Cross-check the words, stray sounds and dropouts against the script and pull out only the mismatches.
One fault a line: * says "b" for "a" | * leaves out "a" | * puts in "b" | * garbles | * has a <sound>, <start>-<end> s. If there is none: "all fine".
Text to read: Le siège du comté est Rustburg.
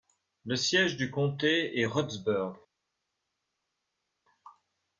all fine